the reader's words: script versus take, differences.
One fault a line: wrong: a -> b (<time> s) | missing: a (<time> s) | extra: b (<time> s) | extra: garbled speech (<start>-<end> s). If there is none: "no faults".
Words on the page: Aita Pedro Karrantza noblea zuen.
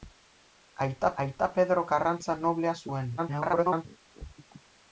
extra: aita (1.2 s)
extra: garbled speech (3.2-3.9 s)